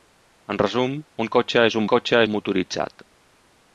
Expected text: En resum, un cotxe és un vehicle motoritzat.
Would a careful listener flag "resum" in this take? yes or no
no